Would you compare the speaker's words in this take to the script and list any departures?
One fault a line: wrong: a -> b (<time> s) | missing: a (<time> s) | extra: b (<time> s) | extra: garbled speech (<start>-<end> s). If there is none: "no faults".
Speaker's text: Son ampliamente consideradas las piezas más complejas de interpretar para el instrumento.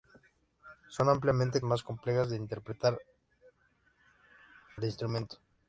missing: consideradas las piezas (1.6 s)
missing: para (3.0 s)